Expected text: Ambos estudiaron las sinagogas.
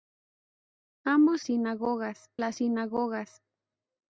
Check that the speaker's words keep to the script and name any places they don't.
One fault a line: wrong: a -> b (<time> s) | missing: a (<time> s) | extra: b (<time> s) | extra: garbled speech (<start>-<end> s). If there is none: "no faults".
wrong: estudiaron -> sinagogas (1.4 s)